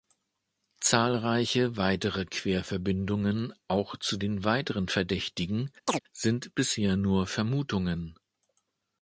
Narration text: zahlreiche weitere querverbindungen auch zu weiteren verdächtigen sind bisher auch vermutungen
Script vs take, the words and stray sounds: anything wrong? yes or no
yes